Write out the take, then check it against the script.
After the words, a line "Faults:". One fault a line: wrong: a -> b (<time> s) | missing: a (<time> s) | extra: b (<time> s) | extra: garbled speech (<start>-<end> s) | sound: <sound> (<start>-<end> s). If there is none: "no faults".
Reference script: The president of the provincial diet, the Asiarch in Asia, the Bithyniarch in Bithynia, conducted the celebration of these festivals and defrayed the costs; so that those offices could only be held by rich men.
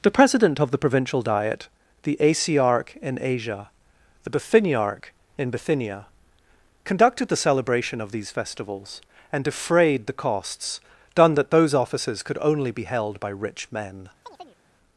The president of the provincial diet, the Asiarch in Asia, the Bithyniarch in Bithynia, conducted the celebration of these festivals and defrayed the costs; done that those offices could only be held by rich men.
Faults:
wrong: so -> done (11.1 s)
sound: chirp (14.2-14.6 s)